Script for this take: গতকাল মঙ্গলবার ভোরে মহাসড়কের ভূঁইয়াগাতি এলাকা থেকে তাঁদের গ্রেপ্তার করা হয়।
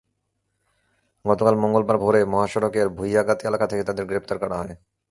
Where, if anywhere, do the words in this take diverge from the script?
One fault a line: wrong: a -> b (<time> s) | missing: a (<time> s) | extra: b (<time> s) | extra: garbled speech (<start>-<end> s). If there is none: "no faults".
no faults